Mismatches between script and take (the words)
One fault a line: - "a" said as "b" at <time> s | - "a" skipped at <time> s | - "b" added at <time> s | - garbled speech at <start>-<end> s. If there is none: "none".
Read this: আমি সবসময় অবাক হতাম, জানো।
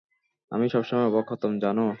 none